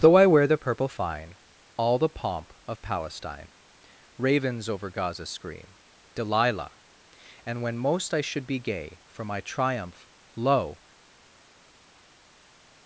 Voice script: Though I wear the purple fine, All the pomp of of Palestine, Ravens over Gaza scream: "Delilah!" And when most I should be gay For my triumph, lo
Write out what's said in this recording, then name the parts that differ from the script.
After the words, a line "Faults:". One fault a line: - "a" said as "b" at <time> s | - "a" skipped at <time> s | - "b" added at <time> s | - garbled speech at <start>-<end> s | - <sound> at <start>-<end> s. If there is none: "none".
Though I wear the purple fine, All the pomp of Palestine, Ravens over Gaza scream: "Delilah!" And when most I should be gay For my triumph, lo
Faults:
- "of" skipped at 2.8 s